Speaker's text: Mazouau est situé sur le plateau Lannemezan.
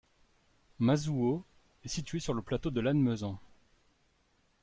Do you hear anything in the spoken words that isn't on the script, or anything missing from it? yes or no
yes